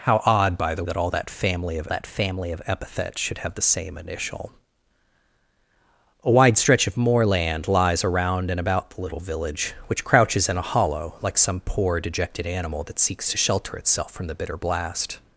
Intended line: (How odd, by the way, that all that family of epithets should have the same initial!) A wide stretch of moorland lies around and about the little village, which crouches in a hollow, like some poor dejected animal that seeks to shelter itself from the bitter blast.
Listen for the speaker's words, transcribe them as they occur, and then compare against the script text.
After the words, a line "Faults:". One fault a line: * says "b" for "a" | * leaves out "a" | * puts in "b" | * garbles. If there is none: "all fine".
(How odd, by the that all that family of that family of epithets should have the same initial!) A wide stretch of moorland lies around and about the little village, which crouches in a hollow, like some poor dejected animal that seeks to shelter itself from the bitter blast.
Faults:
* says "that all" for "way"
* says "family of" for "all"